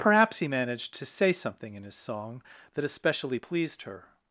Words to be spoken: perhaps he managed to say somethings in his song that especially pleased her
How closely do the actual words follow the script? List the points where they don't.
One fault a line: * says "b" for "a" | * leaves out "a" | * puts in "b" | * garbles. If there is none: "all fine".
* says "something" for "somethings"